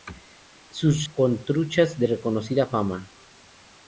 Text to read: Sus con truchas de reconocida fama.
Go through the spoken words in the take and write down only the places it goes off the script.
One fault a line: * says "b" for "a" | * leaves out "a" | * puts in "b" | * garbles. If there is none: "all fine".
all fine